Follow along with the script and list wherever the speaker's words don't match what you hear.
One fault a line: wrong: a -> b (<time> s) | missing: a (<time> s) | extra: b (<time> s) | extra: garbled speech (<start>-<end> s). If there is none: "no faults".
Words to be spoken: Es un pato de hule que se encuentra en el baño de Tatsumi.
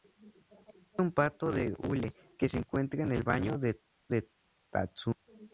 no faults